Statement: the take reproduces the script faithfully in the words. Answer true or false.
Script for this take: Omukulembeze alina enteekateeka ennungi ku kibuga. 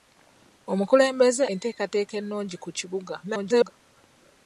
false